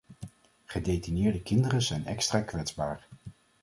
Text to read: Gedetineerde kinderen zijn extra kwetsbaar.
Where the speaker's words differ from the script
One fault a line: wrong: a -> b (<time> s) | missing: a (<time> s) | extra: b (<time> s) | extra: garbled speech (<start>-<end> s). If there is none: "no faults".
no faults